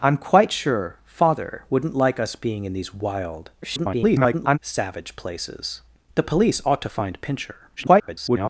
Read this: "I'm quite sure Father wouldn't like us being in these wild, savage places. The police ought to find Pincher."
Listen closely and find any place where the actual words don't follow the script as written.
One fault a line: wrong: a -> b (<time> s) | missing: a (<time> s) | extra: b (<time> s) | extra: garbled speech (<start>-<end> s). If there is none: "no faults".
extra: garbled speech (3.6-4.6 s)
extra: garbled speech (7.8-8.5 s)